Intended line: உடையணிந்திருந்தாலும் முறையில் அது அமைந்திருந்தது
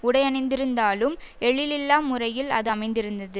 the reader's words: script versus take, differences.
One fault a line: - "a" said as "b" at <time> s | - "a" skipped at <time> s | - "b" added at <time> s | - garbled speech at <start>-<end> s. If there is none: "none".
- "எழிலில்லா" added at 1.4 s